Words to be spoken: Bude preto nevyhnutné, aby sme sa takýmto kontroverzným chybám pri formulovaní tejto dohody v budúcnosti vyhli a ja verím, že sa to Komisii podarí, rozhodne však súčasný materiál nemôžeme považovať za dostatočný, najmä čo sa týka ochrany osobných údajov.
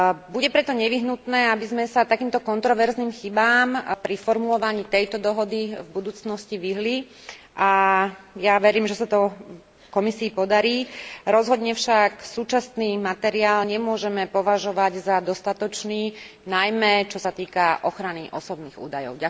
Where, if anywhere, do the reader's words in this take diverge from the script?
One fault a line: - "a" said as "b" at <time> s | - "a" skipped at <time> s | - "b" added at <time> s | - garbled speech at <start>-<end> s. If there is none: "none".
none